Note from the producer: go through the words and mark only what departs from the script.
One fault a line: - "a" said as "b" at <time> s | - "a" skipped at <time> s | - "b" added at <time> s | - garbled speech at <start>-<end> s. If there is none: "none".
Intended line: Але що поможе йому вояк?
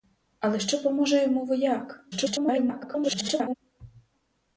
- garbled speech at 2.1-3.5 s